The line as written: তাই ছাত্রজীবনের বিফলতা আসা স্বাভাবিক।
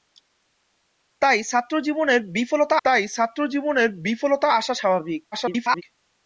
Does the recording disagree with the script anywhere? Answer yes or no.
yes